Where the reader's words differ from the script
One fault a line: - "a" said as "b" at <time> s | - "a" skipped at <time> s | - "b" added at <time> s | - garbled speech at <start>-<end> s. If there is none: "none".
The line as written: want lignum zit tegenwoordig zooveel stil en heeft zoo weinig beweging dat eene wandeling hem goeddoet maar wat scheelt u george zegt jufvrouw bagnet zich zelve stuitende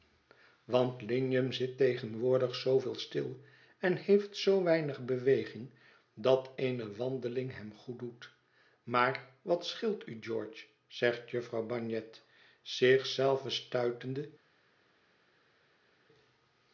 none